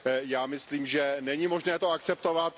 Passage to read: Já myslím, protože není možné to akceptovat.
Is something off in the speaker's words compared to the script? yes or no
yes